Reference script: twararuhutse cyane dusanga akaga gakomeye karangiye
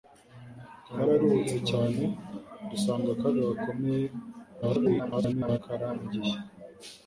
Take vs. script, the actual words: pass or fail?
fail